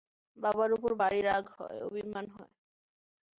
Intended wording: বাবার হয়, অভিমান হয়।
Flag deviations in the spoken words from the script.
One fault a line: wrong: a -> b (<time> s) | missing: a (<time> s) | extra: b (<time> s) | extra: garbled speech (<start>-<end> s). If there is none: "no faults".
extra: উপর ভারি রাগ (0.7 s)